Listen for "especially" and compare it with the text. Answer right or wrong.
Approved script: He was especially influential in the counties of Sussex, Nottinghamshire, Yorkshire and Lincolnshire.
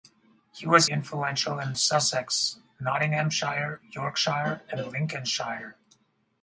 wrong